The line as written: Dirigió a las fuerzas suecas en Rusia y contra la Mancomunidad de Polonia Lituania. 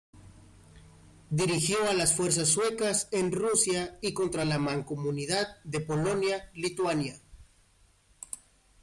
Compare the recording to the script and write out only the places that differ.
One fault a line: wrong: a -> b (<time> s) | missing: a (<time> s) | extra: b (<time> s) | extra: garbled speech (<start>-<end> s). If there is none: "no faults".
no faults